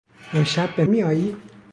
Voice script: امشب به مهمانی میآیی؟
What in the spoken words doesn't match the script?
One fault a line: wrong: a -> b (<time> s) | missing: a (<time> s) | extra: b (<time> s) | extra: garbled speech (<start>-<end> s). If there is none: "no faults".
missing: مهمانی (0.8 s)